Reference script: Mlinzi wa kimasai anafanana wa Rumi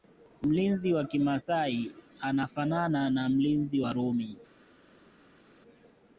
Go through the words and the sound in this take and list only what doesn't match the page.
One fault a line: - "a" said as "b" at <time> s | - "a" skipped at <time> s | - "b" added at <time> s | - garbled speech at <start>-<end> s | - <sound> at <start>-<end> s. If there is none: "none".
- "na mlinzi" added at 3.1 s